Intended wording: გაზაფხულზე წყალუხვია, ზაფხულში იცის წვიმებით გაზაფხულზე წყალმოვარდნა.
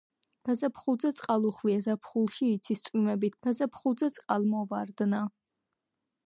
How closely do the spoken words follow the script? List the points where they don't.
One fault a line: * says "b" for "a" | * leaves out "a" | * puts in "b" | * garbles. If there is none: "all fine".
all fine